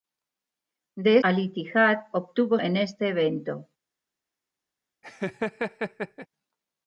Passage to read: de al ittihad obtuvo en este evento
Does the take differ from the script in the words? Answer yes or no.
no